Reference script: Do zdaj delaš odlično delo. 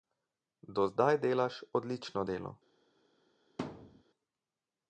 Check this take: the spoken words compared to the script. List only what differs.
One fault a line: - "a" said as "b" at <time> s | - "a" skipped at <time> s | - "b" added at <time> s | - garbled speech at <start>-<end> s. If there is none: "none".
none